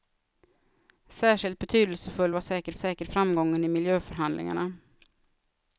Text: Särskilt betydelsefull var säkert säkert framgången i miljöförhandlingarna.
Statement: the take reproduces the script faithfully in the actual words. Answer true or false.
true